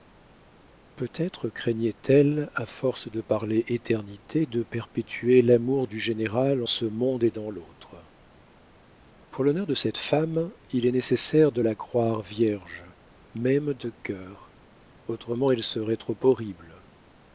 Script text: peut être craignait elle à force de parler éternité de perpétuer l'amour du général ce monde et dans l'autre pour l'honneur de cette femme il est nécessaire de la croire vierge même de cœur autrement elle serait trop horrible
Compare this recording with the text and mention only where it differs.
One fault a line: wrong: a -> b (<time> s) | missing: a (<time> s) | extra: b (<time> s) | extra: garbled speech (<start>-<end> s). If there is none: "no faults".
no faults